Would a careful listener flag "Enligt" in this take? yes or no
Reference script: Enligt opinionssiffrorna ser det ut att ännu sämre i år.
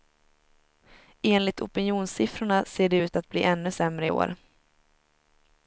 no